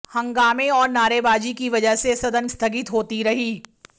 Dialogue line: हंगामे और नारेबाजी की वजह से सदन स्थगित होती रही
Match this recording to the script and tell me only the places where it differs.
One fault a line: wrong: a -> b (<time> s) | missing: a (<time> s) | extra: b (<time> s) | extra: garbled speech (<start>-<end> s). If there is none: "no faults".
no faults